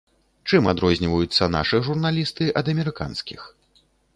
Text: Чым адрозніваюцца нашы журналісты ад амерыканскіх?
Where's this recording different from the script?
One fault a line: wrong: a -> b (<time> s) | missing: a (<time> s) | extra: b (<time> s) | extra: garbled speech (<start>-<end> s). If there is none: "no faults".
no faults